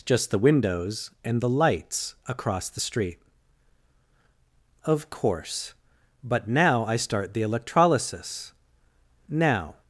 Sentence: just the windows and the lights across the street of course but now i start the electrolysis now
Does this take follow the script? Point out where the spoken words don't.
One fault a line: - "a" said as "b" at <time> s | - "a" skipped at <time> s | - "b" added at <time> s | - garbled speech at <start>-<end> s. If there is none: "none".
none